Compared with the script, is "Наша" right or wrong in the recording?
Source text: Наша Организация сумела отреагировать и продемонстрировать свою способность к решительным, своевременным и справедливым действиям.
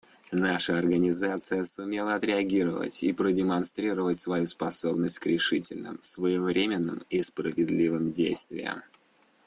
right